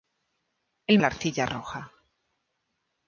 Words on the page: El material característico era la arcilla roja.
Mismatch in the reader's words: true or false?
true